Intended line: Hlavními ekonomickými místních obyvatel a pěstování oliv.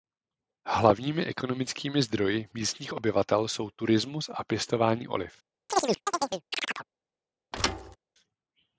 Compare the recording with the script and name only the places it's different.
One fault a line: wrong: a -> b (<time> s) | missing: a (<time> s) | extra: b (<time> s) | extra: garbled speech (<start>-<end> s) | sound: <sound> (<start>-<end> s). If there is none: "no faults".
extra: zdroji (2.0 s)
extra: jsou turismus (3.5 s)
sound: chirp (5.7-6.9 s)
sound: thud (7.5-8.0 s)